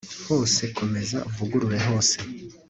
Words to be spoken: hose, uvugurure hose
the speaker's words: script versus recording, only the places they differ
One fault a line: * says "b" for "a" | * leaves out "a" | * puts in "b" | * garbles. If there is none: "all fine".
* puts in "komeza"